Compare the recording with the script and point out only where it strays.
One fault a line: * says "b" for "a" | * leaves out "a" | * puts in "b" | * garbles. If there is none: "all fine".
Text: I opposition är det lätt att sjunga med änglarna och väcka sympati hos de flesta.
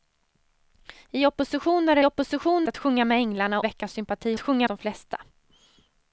* says "opposition" for "lätt"
* leaves out "och"
* says "sjunga" for "hos"